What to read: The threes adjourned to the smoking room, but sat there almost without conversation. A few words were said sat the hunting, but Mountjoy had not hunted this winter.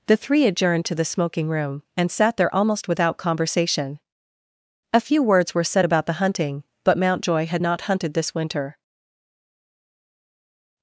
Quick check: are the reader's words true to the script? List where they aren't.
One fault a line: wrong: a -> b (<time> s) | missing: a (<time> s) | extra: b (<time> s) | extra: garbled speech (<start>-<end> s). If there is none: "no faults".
wrong: threes -> three (0.2 s)
wrong: but -> and (1.9 s)
wrong: sat -> about (5.8 s)